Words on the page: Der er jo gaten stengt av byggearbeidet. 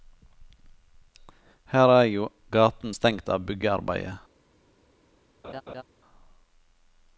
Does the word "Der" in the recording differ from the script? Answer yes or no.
yes